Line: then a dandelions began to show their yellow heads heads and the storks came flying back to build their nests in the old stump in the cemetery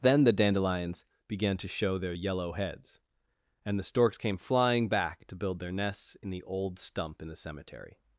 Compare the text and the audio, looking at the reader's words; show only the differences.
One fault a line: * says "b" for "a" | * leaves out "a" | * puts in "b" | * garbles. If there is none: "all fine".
* says "the" for "a"
* leaves out "heads"